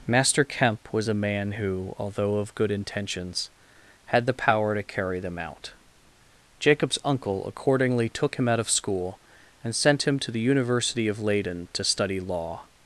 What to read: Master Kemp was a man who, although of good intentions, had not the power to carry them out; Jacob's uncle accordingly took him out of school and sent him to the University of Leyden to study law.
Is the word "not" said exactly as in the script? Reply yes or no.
no